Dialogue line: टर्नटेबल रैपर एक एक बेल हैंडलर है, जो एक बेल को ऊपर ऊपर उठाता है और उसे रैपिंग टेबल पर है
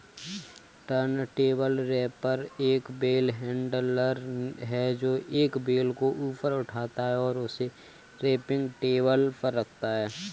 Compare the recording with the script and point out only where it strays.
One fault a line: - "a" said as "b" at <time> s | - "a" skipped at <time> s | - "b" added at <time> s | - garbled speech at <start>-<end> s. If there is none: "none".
- "एक" skipped at 2.9 s
- "ऊपर" skipped at 6.5 s
- "रखता" added at 9.5 s